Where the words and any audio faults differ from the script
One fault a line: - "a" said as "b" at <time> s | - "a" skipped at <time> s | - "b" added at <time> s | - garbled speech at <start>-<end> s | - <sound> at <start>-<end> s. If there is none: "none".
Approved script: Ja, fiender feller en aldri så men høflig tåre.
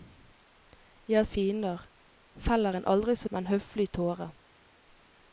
none